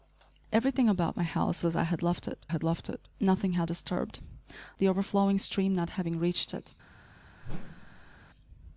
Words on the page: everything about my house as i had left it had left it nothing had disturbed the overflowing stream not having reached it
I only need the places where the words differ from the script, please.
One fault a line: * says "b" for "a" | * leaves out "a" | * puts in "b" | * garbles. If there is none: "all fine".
all fine